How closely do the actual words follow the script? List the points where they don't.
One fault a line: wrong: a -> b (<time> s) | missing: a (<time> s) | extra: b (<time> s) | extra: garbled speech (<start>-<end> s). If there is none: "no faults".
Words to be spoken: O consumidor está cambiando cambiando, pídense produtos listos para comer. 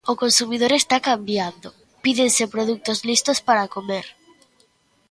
missing: cambiando (1.7 s)